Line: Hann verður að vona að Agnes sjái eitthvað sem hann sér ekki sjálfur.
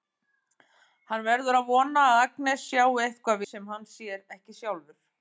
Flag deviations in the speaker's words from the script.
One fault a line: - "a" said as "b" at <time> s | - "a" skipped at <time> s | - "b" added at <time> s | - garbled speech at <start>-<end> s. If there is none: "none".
none